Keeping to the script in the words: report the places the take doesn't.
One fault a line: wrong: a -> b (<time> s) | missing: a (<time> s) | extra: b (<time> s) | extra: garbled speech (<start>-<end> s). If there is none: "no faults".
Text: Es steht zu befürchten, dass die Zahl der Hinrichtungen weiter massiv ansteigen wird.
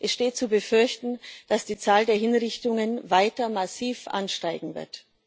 no faults